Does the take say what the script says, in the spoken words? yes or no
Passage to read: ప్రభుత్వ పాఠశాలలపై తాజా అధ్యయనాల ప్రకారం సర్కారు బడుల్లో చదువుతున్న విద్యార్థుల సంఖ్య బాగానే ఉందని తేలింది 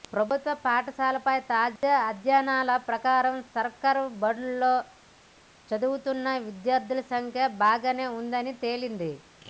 yes